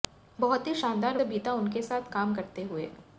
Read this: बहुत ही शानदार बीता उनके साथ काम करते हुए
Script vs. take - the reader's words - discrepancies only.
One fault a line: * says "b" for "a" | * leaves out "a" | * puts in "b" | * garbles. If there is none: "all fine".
all fine